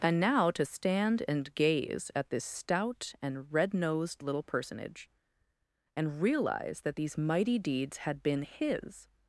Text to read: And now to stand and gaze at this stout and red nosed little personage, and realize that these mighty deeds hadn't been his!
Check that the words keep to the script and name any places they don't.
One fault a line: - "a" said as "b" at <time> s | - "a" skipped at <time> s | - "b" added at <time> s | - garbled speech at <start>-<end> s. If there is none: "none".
- "hadn't" said as "had" at 8.0 s